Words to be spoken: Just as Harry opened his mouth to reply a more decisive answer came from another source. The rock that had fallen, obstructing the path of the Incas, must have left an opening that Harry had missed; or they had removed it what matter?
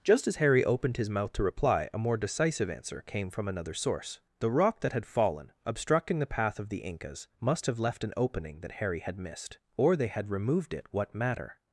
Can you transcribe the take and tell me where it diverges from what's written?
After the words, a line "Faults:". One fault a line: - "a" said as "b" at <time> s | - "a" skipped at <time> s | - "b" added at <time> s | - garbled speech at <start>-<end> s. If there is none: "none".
Just as Harry opened his mouth to reply a more decisive answer came from another source. The rock that had fallen, obstructing the path of the Incas, must have left an opening that Harry had missed; or they had removed it what matter?
Faults:
none